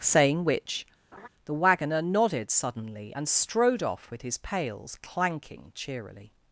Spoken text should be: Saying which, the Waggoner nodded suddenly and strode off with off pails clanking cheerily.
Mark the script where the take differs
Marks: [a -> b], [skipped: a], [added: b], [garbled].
Saying which, the Waggoner nodded suddenly and strode off with [off -> his] pails clanking cheerily.